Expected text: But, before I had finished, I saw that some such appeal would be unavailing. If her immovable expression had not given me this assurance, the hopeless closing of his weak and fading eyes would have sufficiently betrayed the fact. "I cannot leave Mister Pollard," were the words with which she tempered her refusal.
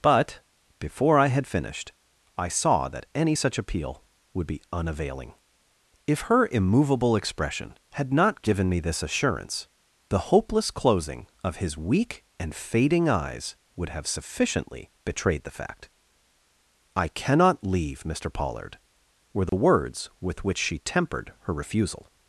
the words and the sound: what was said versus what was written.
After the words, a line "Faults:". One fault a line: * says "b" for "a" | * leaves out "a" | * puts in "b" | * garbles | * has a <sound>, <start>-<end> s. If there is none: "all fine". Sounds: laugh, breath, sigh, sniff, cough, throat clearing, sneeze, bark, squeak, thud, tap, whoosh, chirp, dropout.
But, before I had finished, I saw that any such appeal would be unavailing. If her immovable expression had not given me this assurance, the hopeless closing of his weak and fading eyes would have sufficiently betrayed the fact. "I cannot leave Mister Pollard," were the words with which she tempered her refusal.
Faults:
* says "any" for "some"
* has a dropout, 19.5-19.5 s